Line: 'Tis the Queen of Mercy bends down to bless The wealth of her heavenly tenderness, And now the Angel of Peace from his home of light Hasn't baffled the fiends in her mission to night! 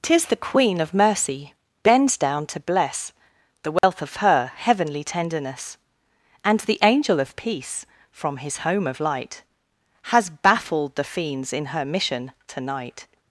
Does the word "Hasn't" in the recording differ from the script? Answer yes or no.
yes